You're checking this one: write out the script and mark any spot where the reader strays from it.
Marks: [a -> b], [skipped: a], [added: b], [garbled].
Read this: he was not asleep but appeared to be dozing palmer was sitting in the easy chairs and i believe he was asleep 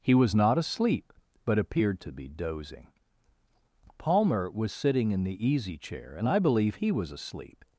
he was not asleep but appeared to be dozing palmer was sitting in the easy [chairs -> chair] and i believe he was asleep